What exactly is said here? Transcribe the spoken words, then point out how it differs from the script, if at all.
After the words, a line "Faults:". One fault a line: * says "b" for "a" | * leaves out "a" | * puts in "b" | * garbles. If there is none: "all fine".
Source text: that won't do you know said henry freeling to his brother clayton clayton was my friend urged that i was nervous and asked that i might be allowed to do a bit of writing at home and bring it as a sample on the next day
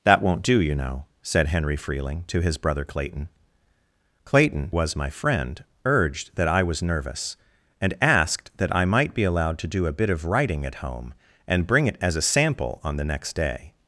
that won't do you know said henry freeling to his brother clayton clayton was my friend urged that i was nervous and asked that i might be allowed to do a bit of writing at home and bring it as a sample on the next day
Faults:
all fine